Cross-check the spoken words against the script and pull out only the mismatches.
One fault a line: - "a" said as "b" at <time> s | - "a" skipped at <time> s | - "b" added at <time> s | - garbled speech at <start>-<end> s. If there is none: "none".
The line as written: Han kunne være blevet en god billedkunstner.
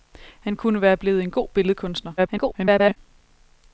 - garbled speech at 2.2-3.0 s